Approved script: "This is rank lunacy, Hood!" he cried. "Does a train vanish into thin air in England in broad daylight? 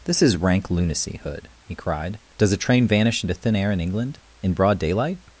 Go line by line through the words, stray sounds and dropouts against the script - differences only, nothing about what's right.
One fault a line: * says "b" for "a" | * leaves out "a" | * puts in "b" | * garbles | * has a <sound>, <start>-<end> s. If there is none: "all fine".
all fine